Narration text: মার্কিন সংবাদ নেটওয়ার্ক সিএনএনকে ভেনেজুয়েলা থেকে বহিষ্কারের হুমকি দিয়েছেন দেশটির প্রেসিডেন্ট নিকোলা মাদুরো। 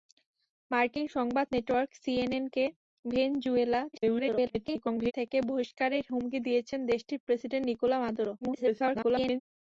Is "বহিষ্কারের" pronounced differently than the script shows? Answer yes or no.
no